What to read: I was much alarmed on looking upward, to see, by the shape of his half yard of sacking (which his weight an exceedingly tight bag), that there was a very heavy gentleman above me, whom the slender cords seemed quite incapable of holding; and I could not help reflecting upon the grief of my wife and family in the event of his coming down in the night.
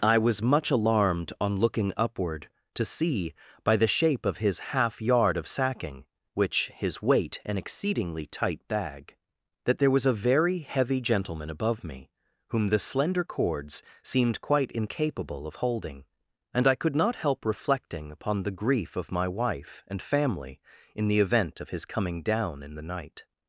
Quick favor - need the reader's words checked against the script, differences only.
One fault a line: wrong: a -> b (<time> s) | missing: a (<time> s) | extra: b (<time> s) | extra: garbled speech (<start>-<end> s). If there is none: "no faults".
no faults